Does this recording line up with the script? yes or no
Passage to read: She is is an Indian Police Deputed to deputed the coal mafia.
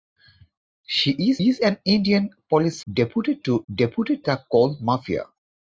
yes